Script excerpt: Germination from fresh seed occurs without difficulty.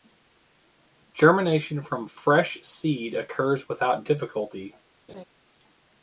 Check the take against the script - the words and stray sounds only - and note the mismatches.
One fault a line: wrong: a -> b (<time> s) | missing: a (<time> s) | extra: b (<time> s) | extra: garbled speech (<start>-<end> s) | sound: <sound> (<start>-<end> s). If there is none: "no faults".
sound: laugh (5.1-5.2 s)